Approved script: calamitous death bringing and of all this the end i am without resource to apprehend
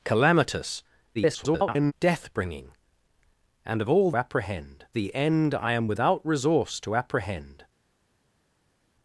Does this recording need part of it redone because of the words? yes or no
yes